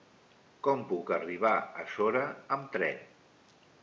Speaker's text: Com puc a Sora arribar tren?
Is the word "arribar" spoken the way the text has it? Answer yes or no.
no